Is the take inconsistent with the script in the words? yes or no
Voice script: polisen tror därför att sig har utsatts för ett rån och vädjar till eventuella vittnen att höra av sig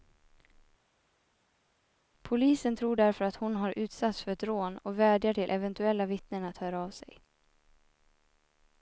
yes